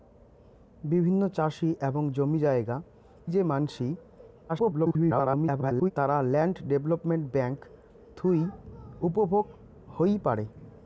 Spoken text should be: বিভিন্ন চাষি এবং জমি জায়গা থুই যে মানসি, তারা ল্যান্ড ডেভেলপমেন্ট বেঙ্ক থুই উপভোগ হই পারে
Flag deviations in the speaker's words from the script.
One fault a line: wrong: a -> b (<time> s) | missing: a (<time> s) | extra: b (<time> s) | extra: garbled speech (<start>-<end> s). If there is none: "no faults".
missing: থুই (2.8 s)
extra: garbled speech (4.5-5.9 s)